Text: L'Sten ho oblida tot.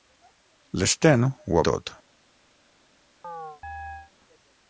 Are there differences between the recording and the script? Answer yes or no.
yes